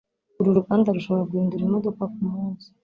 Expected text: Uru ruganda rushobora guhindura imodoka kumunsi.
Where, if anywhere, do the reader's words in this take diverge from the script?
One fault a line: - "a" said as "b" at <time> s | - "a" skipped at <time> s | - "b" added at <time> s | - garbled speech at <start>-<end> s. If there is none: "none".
none